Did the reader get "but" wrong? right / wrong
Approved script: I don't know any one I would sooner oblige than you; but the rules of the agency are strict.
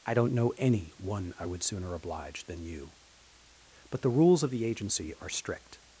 right